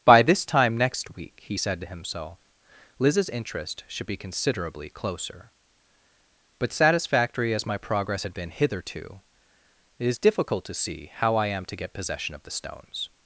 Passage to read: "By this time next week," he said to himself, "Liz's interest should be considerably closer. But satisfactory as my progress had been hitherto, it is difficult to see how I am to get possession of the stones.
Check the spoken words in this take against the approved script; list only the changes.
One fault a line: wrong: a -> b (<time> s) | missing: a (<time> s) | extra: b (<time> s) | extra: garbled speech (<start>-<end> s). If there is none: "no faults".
no faults